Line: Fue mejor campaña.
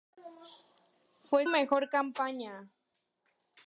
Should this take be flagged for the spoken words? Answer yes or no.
no